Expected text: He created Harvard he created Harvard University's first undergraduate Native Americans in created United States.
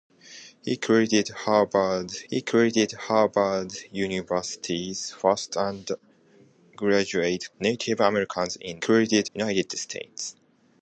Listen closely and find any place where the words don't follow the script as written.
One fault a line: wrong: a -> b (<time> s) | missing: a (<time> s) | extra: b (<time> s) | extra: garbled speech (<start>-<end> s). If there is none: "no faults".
no faults